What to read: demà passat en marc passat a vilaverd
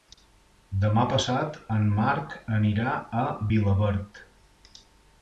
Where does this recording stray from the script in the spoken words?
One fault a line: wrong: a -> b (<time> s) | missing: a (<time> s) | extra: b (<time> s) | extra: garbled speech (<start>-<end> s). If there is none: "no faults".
wrong: passat -> anirà (2.6 s)